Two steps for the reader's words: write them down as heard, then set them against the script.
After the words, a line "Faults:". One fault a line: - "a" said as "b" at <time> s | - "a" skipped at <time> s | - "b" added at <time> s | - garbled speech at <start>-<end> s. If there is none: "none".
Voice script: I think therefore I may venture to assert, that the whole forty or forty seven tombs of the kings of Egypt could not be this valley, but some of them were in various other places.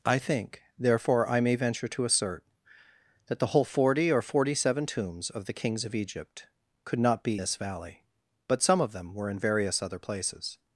I think therefore I may venture to assert, that the whole forty or forty seven tombs of the kings of Egypt could not be this valley, but some of them were in various other places.
Faults:
none